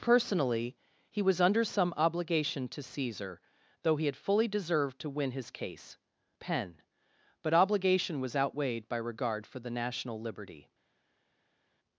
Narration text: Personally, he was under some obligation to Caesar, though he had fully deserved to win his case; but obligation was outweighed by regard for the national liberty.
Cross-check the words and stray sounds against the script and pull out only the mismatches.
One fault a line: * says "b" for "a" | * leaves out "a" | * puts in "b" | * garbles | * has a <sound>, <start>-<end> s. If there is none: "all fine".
* puts in "penn"